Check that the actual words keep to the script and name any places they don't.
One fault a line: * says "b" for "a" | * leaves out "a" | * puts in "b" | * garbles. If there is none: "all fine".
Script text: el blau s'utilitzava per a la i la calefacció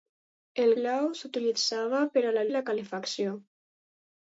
all fine